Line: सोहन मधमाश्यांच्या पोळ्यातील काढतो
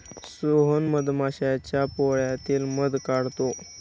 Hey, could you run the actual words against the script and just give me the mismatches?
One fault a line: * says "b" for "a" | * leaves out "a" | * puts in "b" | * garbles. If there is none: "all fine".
* puts in "मध"